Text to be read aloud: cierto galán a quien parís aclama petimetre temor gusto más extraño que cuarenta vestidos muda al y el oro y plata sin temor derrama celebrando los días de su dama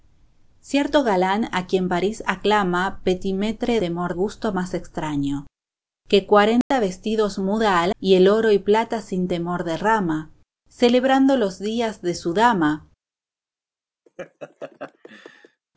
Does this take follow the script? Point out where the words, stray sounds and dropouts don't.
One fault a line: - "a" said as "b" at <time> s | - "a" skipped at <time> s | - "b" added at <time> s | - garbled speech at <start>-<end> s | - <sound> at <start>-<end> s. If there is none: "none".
- dropout at 6.6-6.7 s
- laugh at 14.1-15.6 s